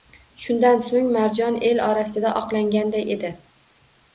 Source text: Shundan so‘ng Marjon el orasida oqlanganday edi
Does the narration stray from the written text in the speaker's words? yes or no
no